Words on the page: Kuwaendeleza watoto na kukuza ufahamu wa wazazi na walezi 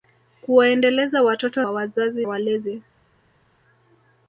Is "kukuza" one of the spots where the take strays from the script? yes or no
yes